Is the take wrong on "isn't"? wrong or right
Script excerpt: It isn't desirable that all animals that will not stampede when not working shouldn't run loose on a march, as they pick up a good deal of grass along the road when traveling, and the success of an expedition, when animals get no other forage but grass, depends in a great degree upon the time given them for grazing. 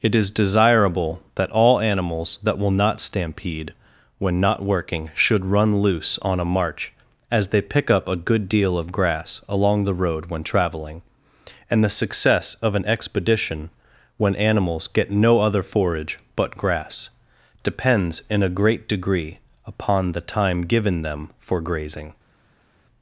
wrong